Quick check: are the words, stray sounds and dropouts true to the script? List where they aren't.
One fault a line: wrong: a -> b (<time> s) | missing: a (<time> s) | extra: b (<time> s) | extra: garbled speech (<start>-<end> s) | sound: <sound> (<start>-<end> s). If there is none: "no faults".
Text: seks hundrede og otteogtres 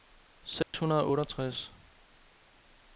sound: dropout (0.6-0.7 s)